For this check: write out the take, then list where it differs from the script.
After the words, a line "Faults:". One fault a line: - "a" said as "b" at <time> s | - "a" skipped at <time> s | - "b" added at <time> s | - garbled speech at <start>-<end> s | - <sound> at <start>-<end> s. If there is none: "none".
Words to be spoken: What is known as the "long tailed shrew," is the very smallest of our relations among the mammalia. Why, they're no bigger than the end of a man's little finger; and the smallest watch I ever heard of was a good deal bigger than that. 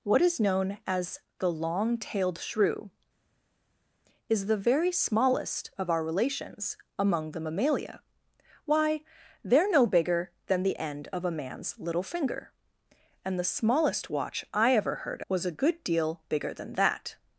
What is known as the "long tailed shrew," is the very smallest of our relations among the mammalia. Why, they're no bigger than the end of a man's little finger; and the smallest watch I ever heard was a good deal bigger than that.
Faults:
- "of" skipped at 15.2 s